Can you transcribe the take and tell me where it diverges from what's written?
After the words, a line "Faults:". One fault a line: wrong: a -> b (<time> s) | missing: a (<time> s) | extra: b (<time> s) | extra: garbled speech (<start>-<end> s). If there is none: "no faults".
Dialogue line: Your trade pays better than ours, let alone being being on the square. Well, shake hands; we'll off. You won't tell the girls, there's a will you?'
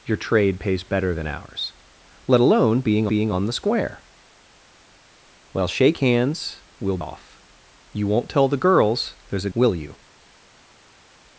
Your trade pays better than ours, let alone being being on the square. Well, shake hands; we'll off. You won't tell the girls, there's a will you?'
Faults:
no faults